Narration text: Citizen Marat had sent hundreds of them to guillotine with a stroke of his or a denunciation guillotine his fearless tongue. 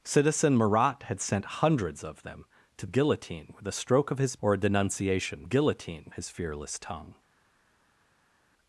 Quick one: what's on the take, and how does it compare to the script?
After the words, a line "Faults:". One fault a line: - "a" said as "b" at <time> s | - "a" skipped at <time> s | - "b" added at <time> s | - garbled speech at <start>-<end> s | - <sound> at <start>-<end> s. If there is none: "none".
Citizen Marat had sent hundreds of them to guillotine with a stroke of his or a denunciation guillotine his fearless tongue.
Faults:
none